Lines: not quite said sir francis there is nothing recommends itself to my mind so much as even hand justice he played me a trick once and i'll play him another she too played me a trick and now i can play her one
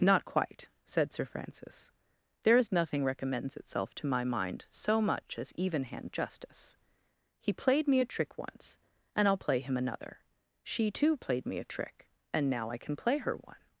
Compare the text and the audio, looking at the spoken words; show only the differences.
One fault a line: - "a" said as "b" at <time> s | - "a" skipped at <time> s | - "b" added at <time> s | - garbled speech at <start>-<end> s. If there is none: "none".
none